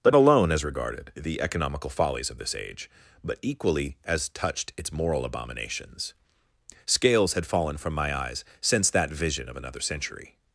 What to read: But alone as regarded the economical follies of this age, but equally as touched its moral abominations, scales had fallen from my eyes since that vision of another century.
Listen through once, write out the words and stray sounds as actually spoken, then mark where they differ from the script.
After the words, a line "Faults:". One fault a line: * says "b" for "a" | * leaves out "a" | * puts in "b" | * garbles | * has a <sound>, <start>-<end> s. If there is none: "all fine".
But alone as regarded the economical follies of this age, but equally as touched its moral abominations, scales had fallen from my eyes since that vision of another century.
Faults:
all fine